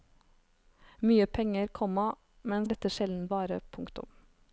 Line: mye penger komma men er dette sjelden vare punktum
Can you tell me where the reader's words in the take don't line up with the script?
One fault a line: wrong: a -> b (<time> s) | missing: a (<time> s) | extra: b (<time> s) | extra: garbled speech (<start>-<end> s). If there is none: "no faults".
no faults